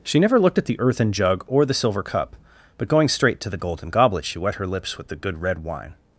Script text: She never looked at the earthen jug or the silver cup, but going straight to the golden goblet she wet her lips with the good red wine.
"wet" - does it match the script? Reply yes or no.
yes